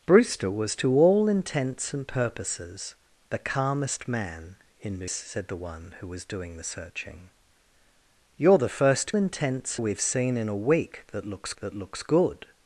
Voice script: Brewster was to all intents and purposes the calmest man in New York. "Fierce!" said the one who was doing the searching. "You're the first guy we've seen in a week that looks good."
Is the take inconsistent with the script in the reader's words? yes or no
yes